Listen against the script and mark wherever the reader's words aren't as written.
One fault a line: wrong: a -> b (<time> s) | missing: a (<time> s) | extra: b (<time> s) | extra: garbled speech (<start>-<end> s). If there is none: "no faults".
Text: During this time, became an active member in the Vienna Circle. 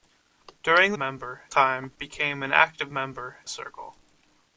wrong: this -> member (1.0 s)
missing: in the Vienna (3.4 s)